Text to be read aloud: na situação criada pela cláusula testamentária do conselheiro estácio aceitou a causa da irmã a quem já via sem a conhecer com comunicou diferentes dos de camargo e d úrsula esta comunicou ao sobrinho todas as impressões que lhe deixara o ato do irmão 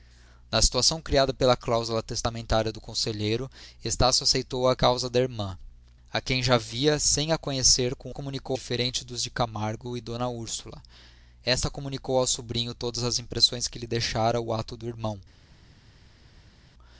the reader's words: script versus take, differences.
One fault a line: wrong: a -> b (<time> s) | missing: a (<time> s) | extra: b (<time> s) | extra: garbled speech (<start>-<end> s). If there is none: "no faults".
no faults